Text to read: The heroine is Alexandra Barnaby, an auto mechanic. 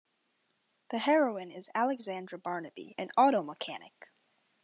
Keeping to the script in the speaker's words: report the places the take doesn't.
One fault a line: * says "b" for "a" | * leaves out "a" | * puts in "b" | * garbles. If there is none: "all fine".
all fine